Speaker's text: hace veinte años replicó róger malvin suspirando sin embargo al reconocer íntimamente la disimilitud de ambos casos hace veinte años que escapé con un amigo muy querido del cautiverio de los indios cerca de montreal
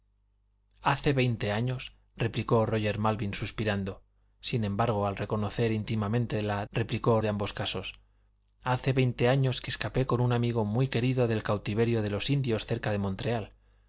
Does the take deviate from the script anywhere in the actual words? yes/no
yes